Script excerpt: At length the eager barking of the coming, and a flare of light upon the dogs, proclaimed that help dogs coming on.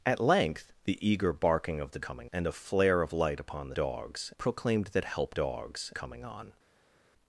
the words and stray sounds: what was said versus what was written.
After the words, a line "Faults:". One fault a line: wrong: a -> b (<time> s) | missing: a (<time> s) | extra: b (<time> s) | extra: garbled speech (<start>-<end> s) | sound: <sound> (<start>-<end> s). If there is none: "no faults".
At length the eager barking of the coming, and a flare of light upon the dogs, proclaimed that help dogs coming on.
Faults:
no faults